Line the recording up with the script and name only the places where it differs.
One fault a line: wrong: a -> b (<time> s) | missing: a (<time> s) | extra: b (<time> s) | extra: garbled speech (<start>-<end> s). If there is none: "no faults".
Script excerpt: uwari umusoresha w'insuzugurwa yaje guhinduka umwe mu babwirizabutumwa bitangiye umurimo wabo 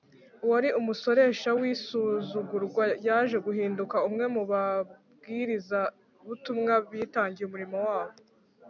no faults